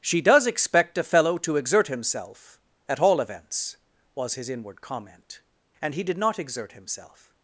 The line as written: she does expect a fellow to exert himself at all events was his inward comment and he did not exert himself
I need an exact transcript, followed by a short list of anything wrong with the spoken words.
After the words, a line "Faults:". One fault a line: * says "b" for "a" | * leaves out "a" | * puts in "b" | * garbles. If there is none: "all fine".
she does expect a fellow to exert himself at all events was his inward comment and he did not exert himself
Faults:
all fine